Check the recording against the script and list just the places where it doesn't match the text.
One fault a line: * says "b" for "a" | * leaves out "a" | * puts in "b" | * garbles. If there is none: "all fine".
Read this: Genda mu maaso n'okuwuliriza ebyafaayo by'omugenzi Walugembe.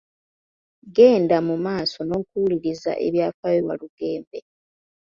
* leaves out "by'omugenzi"